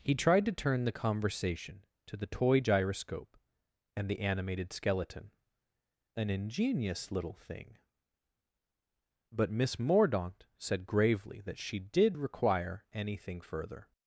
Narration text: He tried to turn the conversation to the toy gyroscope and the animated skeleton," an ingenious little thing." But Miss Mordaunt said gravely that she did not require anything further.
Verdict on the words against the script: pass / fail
fail